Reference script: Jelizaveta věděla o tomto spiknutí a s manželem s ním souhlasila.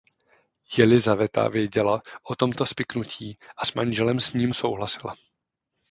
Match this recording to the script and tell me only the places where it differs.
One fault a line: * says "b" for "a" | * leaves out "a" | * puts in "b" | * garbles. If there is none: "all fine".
all fine